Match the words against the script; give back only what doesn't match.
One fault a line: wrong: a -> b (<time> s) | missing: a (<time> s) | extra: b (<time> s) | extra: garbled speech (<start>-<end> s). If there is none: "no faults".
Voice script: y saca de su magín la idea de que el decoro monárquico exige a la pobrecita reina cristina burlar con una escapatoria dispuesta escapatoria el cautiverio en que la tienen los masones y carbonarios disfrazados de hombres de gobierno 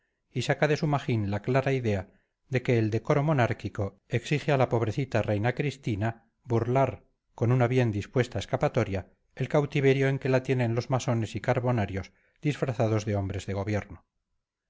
extra: clara (1.4 s)
wrong: escapatoria -> bien (7.7 s)